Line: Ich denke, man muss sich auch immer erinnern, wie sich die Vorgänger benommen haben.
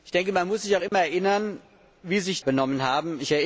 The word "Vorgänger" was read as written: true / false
false